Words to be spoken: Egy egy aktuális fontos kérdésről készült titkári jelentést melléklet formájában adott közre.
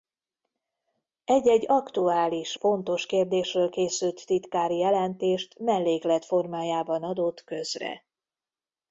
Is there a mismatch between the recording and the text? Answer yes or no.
no